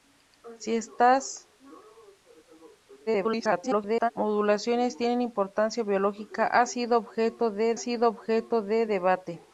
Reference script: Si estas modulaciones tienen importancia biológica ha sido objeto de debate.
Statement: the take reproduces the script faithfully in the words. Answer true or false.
false